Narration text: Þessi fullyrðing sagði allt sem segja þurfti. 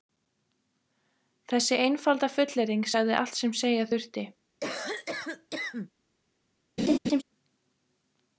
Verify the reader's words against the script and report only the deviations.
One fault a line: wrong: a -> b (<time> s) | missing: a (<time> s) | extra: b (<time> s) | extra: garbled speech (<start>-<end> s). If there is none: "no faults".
extra: einfalda (1.8 s)